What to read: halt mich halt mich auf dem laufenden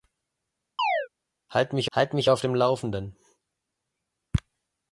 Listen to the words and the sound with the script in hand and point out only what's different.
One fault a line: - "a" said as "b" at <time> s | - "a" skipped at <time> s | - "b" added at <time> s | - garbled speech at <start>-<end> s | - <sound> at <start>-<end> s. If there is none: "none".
- chirp at 0.8-1.1 s